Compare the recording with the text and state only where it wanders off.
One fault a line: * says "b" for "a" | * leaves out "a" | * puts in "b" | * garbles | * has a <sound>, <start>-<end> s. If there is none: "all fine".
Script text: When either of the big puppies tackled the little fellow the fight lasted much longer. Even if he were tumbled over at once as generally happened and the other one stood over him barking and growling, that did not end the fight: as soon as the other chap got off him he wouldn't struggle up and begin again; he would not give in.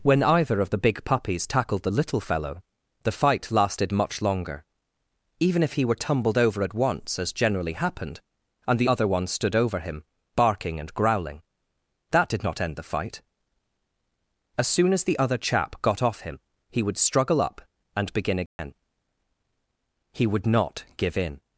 * says "would" for "wouldn't"
* has a dropout, 18.5-18.6 s